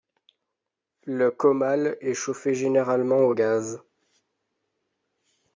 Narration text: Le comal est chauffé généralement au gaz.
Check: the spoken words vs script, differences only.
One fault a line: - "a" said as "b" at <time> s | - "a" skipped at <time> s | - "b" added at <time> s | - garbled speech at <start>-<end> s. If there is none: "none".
none